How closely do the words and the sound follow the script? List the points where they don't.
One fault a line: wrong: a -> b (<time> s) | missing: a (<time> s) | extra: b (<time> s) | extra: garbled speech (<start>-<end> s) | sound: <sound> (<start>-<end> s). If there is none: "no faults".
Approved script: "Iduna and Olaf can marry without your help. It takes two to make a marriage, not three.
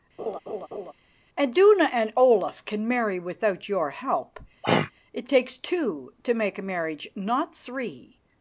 sound: laugh (0.2-0.9 s)
sound: throat clearing (4.6-4.9 s)